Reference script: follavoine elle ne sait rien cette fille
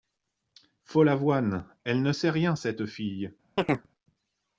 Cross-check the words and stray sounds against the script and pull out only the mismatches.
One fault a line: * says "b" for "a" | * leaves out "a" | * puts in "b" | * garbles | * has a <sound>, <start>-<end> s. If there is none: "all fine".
* has a chirp, 3.6-3.9 s